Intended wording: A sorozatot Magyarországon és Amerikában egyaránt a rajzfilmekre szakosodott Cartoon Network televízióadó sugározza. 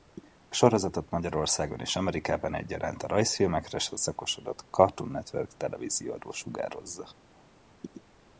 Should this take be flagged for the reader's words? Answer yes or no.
no